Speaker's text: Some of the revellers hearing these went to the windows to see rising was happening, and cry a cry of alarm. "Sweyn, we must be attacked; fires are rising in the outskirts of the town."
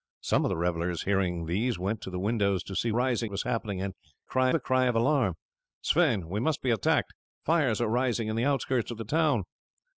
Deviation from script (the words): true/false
false